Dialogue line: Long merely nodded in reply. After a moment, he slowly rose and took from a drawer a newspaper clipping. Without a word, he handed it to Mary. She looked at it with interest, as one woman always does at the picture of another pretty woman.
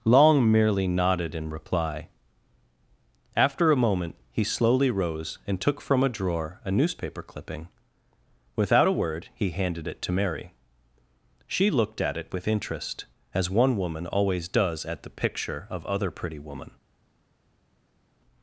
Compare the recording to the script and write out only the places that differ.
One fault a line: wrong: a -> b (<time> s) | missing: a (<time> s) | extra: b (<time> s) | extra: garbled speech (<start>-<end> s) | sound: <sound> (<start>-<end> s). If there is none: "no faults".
wrong: another -> other (15.8 s)